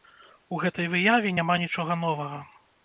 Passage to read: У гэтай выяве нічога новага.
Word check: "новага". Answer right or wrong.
right